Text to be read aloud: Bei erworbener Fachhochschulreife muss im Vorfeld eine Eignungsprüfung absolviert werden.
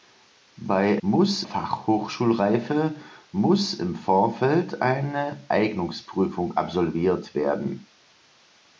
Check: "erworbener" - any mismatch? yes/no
yes